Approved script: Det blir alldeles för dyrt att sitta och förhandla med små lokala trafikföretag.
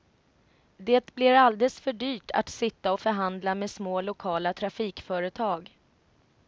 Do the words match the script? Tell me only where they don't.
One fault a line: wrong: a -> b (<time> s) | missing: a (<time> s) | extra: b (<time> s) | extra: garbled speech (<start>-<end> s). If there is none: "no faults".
no faults